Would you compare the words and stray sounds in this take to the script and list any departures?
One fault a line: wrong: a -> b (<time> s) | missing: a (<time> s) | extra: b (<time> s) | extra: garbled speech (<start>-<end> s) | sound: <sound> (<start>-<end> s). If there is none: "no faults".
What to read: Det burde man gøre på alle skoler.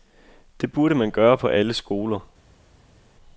no faults